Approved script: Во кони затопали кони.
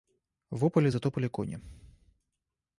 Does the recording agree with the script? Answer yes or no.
no